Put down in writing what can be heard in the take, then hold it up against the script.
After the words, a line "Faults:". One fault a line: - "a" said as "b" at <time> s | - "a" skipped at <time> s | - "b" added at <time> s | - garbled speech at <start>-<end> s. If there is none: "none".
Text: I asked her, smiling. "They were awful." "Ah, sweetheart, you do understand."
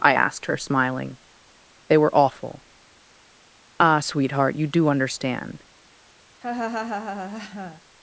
I asked her, smiling. "They were awful." "Ah, sweetheart, you do understand."
Faults:
none